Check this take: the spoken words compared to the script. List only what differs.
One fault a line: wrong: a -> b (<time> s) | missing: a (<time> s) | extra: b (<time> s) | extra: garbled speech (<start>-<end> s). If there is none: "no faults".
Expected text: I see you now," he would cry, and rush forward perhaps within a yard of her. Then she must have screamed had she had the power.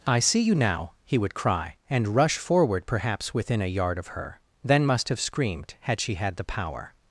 missing: she (4.8 s)